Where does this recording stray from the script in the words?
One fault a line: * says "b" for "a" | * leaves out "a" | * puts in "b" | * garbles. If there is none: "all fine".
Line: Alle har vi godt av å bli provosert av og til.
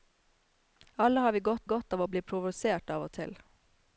* puts in "godt"